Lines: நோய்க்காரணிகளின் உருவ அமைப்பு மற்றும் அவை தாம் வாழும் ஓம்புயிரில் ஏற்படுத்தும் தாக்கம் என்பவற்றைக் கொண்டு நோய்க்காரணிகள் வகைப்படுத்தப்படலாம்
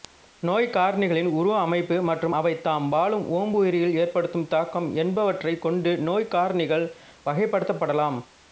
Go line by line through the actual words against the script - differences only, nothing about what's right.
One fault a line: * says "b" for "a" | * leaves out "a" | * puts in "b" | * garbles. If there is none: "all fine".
all fine